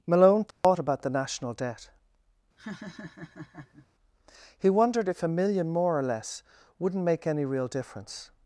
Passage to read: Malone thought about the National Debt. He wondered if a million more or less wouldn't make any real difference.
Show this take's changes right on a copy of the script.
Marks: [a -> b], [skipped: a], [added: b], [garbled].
Malone thought about the National Debt. He wondered if a million more or less wouldn't make any real difference.